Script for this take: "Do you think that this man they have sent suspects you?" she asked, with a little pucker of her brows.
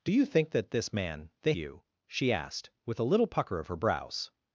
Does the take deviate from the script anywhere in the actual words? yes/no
yes